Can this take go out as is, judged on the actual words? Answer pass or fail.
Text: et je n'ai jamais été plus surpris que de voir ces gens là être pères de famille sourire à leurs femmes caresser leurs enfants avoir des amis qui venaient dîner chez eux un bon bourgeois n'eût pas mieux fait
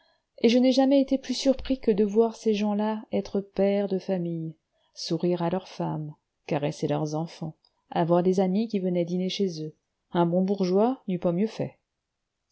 pass